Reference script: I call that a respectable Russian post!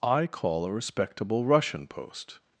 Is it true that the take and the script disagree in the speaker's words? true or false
true